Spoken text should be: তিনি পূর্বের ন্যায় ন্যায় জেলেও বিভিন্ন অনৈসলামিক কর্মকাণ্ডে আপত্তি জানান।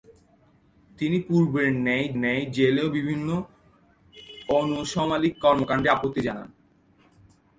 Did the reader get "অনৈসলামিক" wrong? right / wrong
right